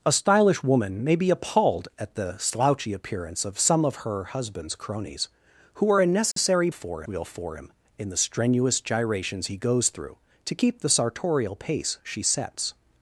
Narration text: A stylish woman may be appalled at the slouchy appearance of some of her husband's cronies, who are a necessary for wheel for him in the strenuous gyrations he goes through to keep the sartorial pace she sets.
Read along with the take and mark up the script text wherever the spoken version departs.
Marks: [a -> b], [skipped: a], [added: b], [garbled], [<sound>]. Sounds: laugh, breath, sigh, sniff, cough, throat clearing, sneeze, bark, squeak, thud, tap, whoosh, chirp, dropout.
A stylish woman may be appalled at the slouchy appearance of some of her husband's cronies, who are a necessary [dropout] for wheel for him in the strenuous gyrations he goes through to keep the sartorial pace she sets.